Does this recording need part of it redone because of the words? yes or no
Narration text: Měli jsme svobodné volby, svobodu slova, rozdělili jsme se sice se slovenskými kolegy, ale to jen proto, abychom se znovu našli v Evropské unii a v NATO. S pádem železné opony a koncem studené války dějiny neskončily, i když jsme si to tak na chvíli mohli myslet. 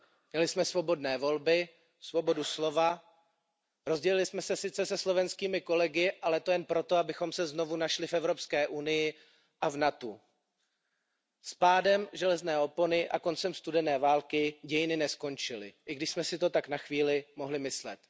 no